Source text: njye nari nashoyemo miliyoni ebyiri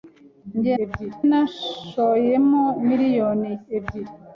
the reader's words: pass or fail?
fail